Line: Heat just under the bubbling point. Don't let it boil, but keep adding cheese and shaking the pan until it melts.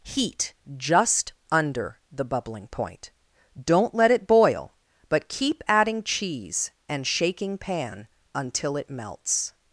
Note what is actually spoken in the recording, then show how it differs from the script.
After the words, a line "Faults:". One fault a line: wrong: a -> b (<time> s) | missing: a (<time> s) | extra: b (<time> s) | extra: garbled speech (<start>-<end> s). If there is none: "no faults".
Heat just under the bubbling point. Don't let it boil, but keep adding cheese and shaking pan until it melts.
Faults:
missing: the (7.6 s)